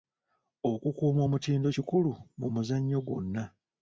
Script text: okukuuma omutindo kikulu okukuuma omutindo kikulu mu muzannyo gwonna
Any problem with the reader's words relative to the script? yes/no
yes